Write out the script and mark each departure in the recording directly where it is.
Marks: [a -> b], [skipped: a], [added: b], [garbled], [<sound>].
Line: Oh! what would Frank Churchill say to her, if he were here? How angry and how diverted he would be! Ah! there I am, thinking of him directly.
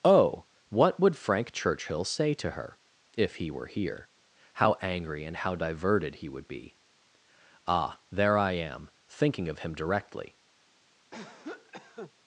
Oh! what would Frank Churchill say to her, if he were here? How angry and how diverted he would be! Ah! there I am, thinking of him directly. [cough]